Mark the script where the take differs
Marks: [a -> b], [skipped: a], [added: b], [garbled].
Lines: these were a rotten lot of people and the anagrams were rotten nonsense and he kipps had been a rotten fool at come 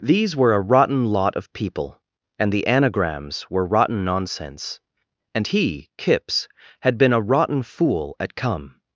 these were a rotten lot of people and the anagrams were rotten nonsense and he kipps had been a rotten fool at come